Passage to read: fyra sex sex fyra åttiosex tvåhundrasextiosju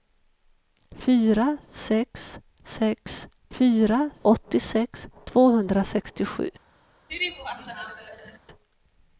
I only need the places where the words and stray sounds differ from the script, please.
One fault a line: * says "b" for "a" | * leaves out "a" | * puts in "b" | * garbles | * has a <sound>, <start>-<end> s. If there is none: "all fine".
* has a laugh, 7.1-8.4 s